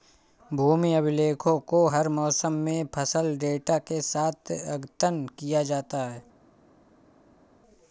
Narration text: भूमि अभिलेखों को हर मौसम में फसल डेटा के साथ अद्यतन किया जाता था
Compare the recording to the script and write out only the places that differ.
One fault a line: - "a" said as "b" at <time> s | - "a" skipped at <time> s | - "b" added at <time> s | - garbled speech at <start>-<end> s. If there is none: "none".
- "था" said as "है" at 6.1 s